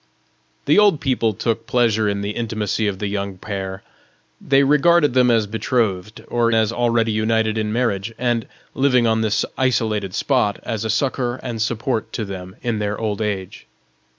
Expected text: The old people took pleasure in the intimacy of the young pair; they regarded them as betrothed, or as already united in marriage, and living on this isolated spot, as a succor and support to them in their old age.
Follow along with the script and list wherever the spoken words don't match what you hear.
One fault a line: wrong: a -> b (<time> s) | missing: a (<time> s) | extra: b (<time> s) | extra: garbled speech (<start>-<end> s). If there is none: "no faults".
no faults